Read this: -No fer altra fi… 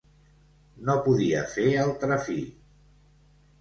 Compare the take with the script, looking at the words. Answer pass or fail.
fail